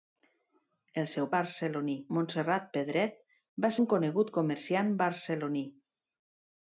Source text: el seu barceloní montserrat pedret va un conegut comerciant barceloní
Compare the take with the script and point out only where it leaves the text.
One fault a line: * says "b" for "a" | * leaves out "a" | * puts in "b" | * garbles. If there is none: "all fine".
all fine